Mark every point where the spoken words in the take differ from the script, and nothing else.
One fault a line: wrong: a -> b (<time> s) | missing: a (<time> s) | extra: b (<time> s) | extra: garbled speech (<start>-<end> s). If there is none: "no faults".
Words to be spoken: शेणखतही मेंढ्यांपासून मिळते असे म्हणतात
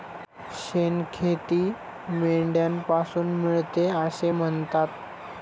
no faults